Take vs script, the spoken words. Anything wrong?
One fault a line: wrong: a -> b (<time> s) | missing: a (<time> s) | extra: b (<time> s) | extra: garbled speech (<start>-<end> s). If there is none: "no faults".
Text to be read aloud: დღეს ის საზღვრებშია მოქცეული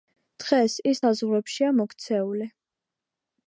no faults